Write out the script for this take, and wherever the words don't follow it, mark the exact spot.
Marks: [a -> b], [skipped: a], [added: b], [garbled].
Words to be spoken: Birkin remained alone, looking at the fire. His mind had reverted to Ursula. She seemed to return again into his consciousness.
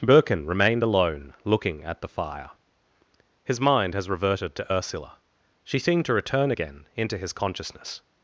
Birkin remained alone, looking at the fire. His mind [had -> has] reverted to Ursula. She seemed to return again into his consciousness.